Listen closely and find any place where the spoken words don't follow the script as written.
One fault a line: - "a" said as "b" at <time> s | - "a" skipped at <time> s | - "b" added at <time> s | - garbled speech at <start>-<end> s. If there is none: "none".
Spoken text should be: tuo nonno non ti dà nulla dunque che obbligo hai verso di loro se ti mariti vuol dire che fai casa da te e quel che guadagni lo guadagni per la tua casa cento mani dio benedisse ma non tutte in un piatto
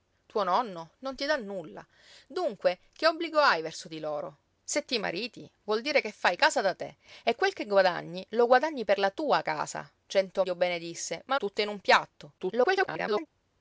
- "mani" skipped at 10.4 s
- "non" skipped at 11.4 s
- garbled speech at 12.4-13.3 s